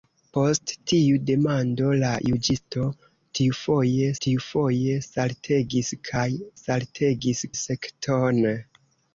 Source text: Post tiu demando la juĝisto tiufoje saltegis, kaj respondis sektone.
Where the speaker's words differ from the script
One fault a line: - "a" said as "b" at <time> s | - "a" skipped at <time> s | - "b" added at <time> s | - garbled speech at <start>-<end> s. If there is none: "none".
- "tiufoje" added at 4.3 s
- "respondis" said as "saltegis" at 6.6 s